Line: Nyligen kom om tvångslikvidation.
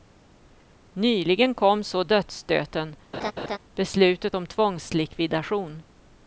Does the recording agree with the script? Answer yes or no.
no